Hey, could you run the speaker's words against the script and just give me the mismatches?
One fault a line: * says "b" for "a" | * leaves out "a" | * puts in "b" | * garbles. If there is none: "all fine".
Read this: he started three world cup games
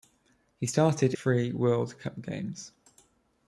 all fine